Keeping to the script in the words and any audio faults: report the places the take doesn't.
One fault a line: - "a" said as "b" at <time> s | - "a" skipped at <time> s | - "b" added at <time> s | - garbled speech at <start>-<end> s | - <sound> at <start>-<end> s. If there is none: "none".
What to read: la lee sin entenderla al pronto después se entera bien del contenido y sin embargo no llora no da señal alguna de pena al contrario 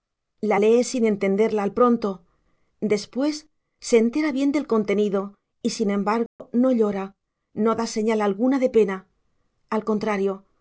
- dropout at 6.3-6.4 s